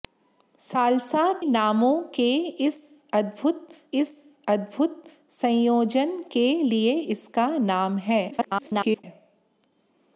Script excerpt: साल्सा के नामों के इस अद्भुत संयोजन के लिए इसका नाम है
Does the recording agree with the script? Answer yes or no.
no